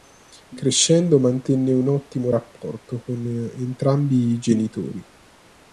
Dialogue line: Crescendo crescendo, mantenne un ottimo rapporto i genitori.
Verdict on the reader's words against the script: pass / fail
fail